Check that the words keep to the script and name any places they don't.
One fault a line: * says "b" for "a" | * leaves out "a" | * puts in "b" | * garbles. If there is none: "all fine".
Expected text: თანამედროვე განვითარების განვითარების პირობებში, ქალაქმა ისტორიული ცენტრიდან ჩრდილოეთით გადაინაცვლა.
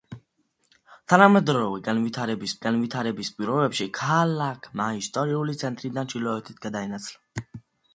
all fine